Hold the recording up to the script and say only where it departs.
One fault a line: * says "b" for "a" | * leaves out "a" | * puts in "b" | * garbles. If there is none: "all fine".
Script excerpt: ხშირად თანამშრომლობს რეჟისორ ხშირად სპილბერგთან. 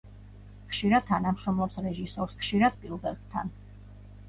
all fine